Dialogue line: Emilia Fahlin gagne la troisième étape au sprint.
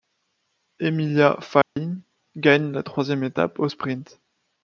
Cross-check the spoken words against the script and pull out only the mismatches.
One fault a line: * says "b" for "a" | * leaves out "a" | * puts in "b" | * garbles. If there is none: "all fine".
all fine